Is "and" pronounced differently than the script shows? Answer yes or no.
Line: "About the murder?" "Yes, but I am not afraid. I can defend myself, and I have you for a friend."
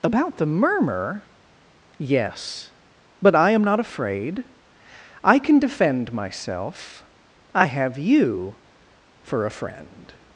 yes